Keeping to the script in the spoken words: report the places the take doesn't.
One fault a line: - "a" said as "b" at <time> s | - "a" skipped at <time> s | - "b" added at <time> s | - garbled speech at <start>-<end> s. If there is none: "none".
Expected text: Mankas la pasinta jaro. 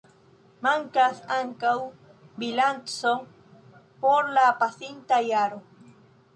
- "ankaŭ bilanco por" added at 1.4 s